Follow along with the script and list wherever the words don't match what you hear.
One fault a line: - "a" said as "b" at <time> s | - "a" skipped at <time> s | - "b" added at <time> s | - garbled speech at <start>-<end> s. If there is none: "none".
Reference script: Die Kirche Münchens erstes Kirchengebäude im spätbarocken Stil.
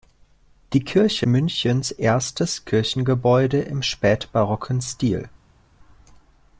none